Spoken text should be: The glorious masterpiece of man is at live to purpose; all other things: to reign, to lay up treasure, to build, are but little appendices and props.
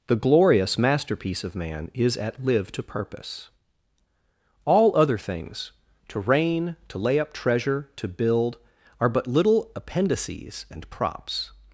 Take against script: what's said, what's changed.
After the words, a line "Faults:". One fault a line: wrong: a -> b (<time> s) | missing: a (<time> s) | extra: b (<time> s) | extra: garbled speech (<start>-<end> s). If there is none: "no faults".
The glorious masterpiece of man is at live to purpose; all other things: to reign, to lay up treasure, to build, are but little appendices and props.
Faults:
no faults